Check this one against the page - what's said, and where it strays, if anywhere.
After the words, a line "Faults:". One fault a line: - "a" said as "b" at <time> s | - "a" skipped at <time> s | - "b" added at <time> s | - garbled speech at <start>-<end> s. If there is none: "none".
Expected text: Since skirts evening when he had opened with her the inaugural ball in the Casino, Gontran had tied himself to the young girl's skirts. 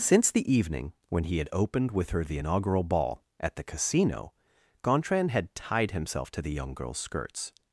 Since the evening when he had opened with her the inaugural ball at the Casino, Gontran had tied himself to the young girl's skirts.
Faults:
- "skirts" said as "the" at 0.3 s
- "in" said as "at" at 3.4 s